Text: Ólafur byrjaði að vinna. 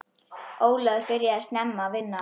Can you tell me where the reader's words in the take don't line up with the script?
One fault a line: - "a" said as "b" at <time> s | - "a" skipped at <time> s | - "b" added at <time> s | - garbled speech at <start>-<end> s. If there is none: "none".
- "snemma" added at 1.5 s